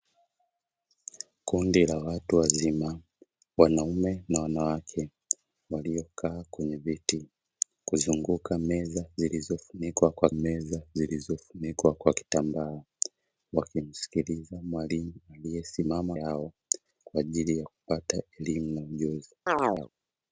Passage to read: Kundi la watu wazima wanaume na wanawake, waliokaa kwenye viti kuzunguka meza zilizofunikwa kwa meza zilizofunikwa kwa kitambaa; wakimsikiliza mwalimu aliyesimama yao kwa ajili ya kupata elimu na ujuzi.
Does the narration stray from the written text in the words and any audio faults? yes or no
yes